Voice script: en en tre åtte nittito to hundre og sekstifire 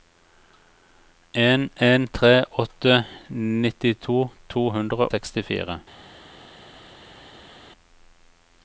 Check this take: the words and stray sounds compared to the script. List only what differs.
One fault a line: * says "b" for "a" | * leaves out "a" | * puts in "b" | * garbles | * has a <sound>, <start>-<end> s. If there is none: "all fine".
* leaves out "og"